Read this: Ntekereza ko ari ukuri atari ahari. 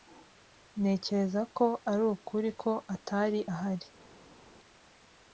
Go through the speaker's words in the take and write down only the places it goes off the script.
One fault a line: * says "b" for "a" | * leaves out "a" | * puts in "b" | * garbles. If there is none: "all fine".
* puts in "ko"